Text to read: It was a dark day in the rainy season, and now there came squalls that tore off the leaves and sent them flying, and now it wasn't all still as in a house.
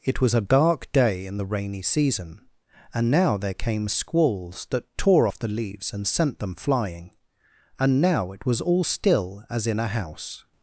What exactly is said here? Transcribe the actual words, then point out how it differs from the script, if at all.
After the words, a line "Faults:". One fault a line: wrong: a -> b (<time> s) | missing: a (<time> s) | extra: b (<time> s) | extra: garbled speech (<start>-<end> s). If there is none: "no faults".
It was a dark day in the rainy season, and now there came squalls that tore off the leaves and sent them flying, and now it was all still as in a house.
Faults:
wrong: wasn't -> was (8.4 s)